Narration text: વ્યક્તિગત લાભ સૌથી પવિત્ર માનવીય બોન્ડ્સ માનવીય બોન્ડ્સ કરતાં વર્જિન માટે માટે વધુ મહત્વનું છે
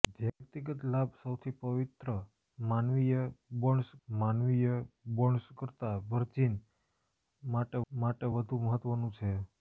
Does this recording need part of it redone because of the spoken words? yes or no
no